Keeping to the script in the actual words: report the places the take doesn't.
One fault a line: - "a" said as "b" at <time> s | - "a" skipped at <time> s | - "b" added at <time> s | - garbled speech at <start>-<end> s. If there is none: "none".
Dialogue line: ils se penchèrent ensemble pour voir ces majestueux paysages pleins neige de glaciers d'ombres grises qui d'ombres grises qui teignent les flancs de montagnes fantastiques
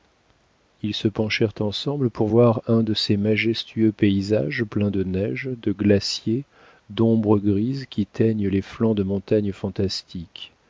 - "un de" added at 2.7 s
- "de" added at 4.9 s
- "d'ombres grises qui" skipped at 8.1 s